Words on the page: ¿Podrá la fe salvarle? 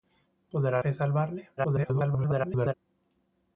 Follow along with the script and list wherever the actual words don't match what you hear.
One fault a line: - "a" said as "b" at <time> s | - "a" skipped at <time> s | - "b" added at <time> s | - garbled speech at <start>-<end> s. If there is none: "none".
- "la" skipped at 0.8 s
- garbled speech at 1.6-2.7 s